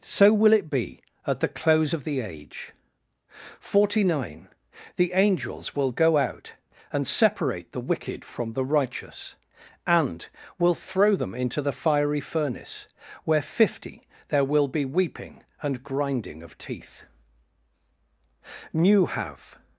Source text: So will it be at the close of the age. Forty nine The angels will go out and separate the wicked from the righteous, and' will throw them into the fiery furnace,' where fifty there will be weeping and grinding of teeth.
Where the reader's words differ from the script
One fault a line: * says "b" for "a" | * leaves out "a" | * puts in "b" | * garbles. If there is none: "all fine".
* puts in "New Have"